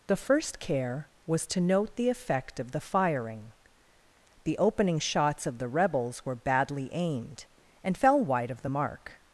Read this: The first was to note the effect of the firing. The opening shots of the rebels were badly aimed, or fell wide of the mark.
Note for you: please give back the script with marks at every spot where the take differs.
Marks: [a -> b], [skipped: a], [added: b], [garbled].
The first [added: care] was to note the effect of the firing. The opening shots of the rebels were badly aimed, [or -> and] fell wide of the mark.